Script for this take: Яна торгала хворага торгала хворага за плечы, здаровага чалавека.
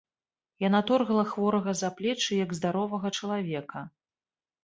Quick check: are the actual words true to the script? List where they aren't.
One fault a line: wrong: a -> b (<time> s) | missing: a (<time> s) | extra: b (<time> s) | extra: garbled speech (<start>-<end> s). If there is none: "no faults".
missing: торгала хворага (1.8 s)
extra: як (2.5 s)